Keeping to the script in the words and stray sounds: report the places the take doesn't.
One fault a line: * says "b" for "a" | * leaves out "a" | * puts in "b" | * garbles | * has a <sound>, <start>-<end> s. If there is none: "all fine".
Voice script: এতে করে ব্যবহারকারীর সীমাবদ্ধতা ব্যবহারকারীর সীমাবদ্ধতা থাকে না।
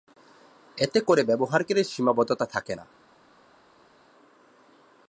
* leaves out "ব্যবহারকারীর সীমাবদ্ধতা"